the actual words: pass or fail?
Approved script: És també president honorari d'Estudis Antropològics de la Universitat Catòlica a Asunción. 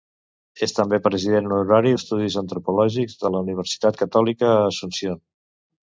pass